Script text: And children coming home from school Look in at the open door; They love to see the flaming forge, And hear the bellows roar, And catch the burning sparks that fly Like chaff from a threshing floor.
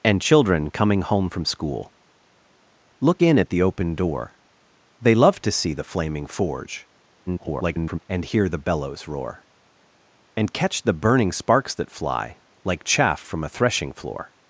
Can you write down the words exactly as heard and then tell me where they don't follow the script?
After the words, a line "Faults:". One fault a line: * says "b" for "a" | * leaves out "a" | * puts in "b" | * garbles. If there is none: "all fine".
And children coming home from school Look in at the open door; They love to see the flaming forge, [garbled] And hear the bellows roar, And catch the burning sparks that fly Like chaff from a threshing floor.
Faults:
* garbles